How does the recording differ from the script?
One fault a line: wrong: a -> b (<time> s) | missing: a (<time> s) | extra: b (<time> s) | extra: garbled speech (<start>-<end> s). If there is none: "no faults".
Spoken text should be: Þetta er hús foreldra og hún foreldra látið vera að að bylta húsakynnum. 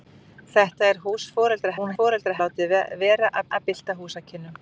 no faults